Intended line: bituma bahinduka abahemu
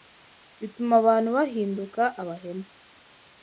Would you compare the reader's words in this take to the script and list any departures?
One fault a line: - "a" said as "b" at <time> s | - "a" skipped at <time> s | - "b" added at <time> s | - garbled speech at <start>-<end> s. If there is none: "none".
- "abantu" added at 1.0 s